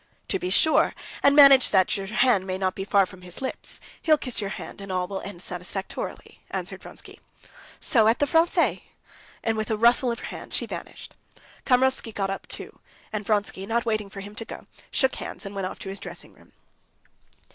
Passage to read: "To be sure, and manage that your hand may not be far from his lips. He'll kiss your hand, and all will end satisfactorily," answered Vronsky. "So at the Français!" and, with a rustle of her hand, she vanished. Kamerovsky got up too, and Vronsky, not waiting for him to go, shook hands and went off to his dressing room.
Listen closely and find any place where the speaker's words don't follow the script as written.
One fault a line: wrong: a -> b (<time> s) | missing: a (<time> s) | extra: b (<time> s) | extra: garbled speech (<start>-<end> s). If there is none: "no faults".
no faults